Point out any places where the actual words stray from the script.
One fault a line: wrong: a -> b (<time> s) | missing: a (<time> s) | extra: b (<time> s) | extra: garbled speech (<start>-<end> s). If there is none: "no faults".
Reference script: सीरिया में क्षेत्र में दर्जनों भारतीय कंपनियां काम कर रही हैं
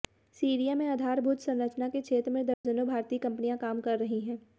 extra: आधारभूत संरचना के (0.9 s)